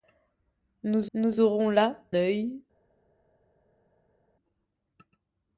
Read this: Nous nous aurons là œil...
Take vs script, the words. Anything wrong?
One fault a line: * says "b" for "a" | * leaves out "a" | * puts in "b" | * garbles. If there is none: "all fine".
all fine